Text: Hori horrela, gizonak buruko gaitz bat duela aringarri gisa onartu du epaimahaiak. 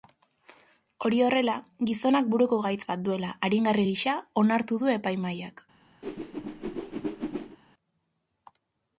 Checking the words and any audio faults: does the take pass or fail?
fail